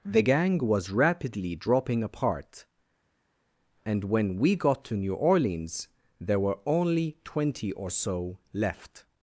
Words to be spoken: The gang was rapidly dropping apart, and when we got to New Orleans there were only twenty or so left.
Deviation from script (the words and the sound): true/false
false